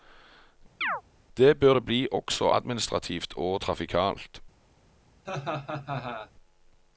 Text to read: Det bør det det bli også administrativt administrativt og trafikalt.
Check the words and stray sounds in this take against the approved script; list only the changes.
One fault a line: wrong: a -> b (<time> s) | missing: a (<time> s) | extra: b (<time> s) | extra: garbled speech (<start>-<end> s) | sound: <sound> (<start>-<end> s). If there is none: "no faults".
sound: chirp (0.8-1.0 s)
missing: det (1.9 s)
missing: administrativt (3.3 s)
sound: laugh (5.2-6.3 s)